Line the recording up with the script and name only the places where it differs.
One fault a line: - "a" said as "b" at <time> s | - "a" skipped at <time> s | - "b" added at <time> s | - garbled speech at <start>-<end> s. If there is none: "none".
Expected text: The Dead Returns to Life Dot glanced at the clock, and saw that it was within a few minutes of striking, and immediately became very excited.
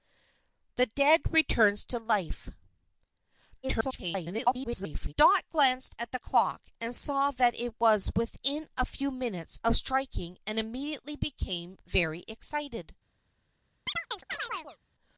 - garbled speech at 3.6-5.1 s